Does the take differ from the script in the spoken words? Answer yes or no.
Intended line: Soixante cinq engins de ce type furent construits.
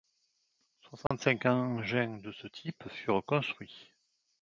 no